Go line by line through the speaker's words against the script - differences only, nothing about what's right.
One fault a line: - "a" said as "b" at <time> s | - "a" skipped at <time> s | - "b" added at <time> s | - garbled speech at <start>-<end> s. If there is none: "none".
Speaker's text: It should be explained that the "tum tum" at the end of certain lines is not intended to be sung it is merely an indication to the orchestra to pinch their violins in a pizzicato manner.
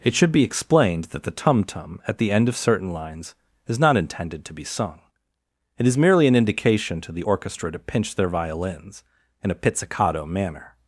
none